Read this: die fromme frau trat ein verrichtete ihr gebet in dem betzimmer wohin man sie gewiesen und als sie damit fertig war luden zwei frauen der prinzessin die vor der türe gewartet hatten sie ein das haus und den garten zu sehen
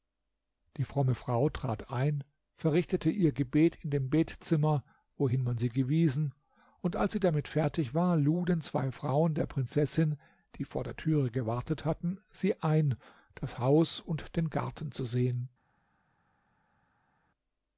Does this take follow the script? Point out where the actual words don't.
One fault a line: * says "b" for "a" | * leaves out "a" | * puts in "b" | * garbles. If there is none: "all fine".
all fine